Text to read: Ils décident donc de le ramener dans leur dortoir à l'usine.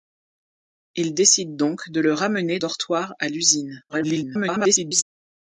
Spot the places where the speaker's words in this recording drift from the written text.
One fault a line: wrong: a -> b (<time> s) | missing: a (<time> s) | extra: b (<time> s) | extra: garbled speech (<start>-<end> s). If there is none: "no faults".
missing: dans leur (2.6 s)
extra: garbled speech (3.9-5.0 s)